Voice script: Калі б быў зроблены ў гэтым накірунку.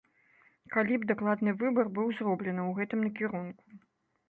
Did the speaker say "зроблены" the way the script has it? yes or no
yes